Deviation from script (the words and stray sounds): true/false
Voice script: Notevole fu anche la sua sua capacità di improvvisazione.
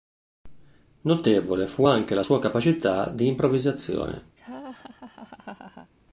true